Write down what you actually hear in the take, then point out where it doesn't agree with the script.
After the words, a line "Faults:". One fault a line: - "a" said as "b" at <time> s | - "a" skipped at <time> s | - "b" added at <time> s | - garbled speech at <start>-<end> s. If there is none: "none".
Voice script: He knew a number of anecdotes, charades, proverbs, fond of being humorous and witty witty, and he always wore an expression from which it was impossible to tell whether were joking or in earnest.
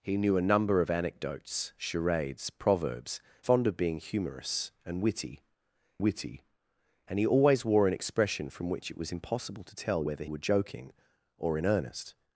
He knew a number of anecdotes, charades, proverbs, fond of being humorous and witty witty, and he always wore an expression from which it was impossible to tell whether were joking or in earnest.
Faults:
none